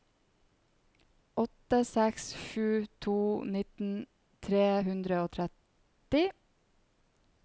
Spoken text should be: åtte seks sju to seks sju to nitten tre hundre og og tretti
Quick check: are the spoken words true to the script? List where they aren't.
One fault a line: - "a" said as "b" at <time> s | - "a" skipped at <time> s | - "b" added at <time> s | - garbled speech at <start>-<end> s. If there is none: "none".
- "seks sju to" skipped at 3.2 s
- "og" skipped at 5.3 s